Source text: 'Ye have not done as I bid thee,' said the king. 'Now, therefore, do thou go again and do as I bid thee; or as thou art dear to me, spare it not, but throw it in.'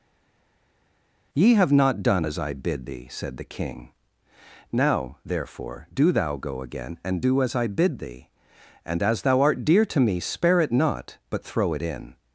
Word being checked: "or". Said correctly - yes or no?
no